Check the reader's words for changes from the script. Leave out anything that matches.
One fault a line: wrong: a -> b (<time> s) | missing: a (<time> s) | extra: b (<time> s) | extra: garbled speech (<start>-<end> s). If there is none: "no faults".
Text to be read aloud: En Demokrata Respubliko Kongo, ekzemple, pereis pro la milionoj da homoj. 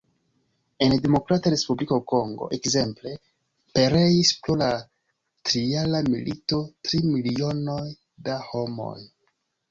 extra: trijara milito tri (5.5 s)